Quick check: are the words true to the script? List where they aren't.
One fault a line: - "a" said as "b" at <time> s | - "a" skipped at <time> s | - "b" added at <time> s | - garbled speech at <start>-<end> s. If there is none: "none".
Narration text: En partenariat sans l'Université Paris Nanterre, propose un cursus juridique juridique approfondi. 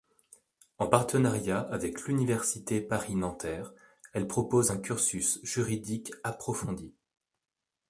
- "sans" said as "avec" at 1.6 s
- "elle" added at 4.1 s
- "juridique" skipped at 6.1 s